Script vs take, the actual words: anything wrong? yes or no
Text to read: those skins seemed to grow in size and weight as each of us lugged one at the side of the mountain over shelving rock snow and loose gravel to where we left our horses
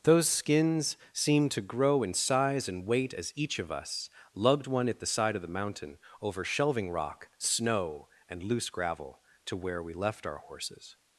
no